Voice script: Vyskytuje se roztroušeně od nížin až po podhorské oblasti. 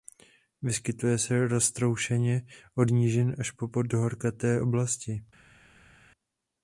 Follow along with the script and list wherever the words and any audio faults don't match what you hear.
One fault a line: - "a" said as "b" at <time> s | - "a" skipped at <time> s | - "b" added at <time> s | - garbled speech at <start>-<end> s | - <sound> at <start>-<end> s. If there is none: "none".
none